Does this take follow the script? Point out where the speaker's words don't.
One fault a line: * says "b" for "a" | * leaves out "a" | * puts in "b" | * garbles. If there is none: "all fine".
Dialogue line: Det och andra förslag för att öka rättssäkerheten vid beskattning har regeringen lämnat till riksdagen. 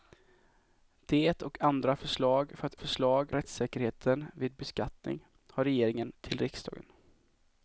* says "förslag" for "öka"
* leaves out "lämnat"